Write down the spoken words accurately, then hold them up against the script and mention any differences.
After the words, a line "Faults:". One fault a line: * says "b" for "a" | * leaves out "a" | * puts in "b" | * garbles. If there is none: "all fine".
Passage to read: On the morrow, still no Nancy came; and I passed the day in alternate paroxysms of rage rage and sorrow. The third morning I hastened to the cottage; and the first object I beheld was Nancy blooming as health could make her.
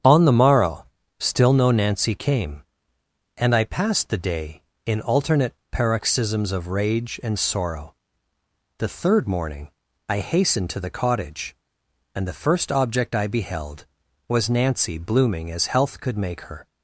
On the morrow, still no Nancy came; and I passed the day in alternate paroxysms of rage and sorrow. The third morning I hastened to the cottage; and the first object I beheld was Nancy blooming as health could make her.
Faults:
* leaves out "rage"